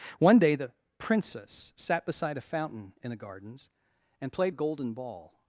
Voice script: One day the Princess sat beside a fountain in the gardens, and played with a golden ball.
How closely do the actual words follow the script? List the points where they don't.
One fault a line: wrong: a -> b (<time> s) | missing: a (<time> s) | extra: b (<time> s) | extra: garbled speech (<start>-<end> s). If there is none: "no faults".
missing: with (4.5 s)